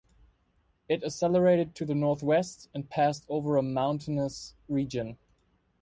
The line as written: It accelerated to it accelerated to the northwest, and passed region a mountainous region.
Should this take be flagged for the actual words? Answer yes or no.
yes